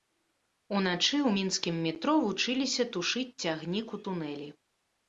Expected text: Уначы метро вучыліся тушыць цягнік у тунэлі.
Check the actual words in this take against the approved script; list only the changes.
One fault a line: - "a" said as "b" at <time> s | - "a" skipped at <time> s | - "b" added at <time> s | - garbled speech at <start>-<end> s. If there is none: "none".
- "ў мінскім" added at 1.2 s